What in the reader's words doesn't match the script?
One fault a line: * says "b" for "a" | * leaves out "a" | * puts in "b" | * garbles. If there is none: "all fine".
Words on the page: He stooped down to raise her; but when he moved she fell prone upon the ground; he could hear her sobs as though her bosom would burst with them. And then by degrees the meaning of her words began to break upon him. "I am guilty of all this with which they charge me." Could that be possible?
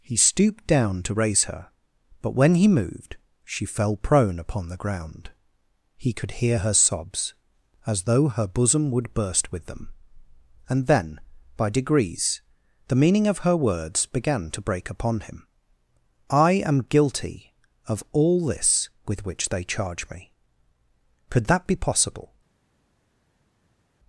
all fine